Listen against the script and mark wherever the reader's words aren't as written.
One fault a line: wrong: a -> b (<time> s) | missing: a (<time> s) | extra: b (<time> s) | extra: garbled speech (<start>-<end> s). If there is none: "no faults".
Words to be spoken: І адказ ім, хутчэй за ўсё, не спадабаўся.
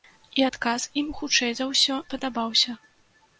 missing: не (2.0 s)